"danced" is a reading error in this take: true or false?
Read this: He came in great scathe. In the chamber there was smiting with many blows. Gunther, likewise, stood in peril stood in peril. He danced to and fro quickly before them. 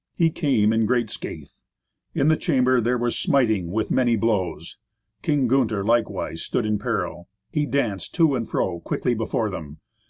false